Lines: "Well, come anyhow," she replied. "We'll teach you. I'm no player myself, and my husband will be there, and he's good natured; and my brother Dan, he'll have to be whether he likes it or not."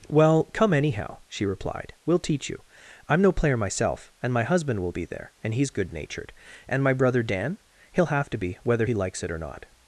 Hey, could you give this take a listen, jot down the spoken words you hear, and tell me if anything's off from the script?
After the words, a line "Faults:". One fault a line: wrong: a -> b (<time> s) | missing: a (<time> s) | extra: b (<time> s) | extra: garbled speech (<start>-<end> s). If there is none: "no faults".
"Well, come anyhow," she replied. "We'll teach you. I'm no player myself, and my husband will be there, and he's good natured; and my brother Dan, he'll have to be whether he likes it or not."
Faults:
no faults